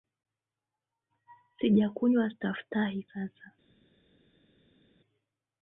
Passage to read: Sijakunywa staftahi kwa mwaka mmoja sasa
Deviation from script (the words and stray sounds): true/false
true